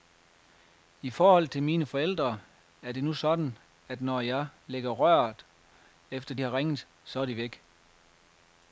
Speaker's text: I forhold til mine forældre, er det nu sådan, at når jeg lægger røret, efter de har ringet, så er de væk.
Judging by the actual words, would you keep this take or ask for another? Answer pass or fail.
fail